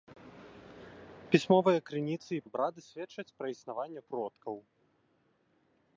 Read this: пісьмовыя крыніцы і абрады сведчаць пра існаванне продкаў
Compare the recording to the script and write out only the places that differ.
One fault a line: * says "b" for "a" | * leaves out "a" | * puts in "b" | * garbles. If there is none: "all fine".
all fine